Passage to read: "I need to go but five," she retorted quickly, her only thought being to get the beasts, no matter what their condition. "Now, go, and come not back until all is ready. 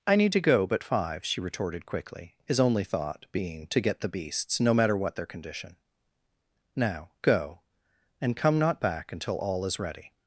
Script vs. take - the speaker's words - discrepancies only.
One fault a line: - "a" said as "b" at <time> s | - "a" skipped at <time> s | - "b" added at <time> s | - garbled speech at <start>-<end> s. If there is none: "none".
- "her" said as "his" at 2.5 s